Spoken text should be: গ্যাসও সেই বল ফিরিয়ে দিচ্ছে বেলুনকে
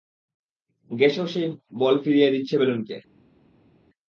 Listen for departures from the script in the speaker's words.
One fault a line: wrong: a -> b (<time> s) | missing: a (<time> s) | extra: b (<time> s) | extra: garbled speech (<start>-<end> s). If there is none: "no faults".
no faults